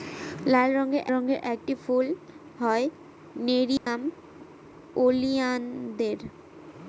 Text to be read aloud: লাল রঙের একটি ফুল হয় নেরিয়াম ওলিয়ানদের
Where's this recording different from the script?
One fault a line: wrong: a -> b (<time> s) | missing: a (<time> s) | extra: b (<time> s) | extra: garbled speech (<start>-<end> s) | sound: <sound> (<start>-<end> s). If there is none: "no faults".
extra: রঙের (1.1 s)
sound: dropout (3.8-3.9 s)